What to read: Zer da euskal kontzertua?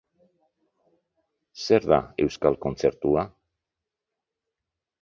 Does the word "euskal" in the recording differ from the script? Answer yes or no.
no